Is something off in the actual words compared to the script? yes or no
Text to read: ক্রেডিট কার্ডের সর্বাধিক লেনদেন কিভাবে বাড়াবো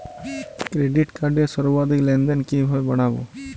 no